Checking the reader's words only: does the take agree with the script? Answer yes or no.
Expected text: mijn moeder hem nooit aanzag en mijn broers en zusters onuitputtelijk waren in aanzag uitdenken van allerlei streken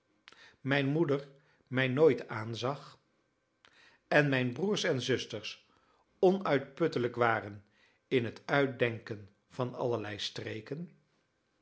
no